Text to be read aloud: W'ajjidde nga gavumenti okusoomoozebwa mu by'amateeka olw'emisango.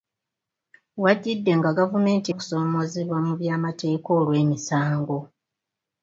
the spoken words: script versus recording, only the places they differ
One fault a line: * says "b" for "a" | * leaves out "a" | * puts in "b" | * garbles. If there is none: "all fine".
all fine